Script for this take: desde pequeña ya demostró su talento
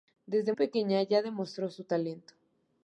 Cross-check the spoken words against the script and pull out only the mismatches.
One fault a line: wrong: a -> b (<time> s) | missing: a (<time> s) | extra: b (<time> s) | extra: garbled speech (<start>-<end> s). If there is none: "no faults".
no faults